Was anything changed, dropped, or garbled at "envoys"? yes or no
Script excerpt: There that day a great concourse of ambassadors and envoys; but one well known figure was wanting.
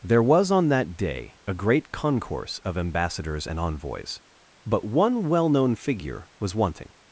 no